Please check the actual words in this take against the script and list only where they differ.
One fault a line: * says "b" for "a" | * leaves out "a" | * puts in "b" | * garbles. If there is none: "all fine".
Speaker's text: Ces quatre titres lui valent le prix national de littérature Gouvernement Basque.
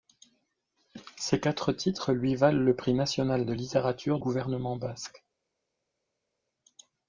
all fine